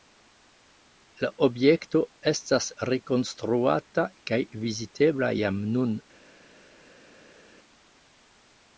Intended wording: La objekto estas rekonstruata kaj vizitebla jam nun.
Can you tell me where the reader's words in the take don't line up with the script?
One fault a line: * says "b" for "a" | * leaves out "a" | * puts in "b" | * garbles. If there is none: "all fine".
all fine